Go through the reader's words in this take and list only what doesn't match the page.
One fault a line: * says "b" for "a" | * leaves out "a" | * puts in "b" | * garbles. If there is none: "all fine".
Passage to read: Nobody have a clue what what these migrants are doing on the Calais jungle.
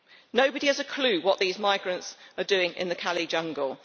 * says "has" for "have"
* leaves out "what"
* says "in" for "on"